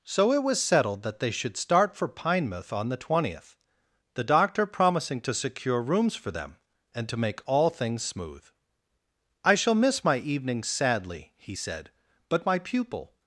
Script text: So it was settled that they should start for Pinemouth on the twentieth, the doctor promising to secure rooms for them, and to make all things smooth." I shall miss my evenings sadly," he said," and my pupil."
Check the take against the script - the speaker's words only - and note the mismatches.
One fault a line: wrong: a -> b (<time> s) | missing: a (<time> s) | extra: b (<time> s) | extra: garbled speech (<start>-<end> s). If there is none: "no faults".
wrong: and -> but (12.3 s)